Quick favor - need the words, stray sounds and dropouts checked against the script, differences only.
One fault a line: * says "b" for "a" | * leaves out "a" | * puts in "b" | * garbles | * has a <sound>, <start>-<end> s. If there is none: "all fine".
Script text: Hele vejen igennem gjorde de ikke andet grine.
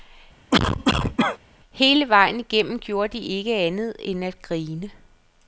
* has a cough, 0.5-1.4 s
* puts in "end at"